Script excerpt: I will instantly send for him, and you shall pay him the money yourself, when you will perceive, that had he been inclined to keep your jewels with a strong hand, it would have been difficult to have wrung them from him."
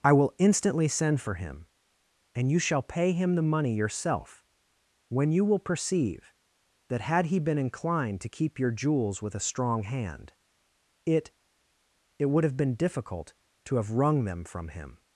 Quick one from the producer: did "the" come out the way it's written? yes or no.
yes